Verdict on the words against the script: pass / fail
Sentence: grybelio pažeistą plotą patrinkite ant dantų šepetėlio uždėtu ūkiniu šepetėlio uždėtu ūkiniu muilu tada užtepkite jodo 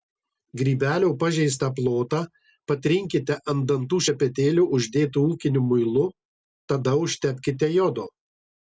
fail